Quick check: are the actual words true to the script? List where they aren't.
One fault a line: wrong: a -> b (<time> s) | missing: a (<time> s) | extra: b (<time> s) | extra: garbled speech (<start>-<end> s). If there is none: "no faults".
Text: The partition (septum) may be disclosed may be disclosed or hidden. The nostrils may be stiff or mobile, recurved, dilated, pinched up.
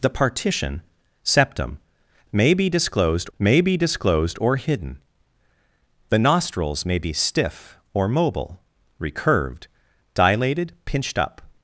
no faults